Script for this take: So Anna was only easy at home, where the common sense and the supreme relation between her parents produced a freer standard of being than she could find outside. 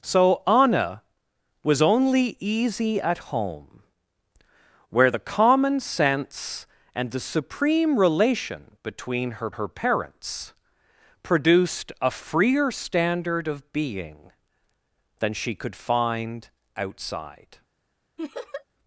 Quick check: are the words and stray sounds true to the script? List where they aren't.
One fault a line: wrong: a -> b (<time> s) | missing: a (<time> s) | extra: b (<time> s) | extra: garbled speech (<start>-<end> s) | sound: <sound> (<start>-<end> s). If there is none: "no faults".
extra: her (9.5 s)
sound: laugh (18.2-18.6 s)